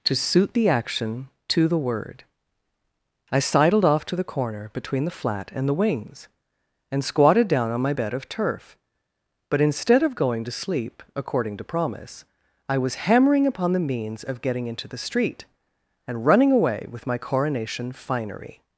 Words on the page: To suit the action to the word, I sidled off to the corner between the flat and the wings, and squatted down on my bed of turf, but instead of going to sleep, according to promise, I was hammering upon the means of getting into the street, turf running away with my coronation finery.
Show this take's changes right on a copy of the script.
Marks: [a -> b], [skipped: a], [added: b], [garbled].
To suit the action to the word, I sidled off to the corner between the flat and the wings, and squatted down on my bed of turf, but instead of going to sleep, according to promise, I was hammering upon the means of getting into the street, [turf -> and] running away with my coronation finery.